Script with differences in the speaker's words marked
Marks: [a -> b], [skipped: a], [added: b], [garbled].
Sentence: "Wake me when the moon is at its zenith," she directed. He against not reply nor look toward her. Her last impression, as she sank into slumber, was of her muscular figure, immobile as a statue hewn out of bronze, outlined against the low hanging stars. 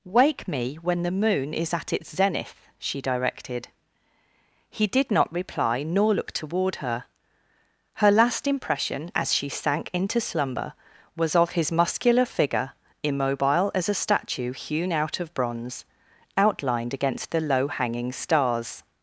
"Wake me when the moon is at its zenith," she directed. He [against -> did] not reply nor look toward her. Her last impression, as she sank into slumber, was of [her -> his] muscular figure, immobile as a statue hewn out of bronze, outlined against the low hanging stars.